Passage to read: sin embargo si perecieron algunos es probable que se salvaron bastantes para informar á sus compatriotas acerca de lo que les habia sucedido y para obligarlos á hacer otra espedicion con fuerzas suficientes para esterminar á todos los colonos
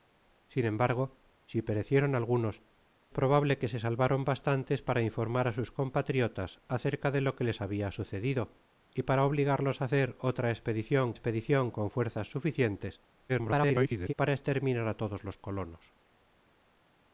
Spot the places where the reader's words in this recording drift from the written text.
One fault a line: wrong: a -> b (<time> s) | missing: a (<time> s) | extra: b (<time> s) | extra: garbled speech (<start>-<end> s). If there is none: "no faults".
missing: es (2.6 s)
extra: espedicion (11.1 s)
extra: garbled speech (13.3-14.1 s)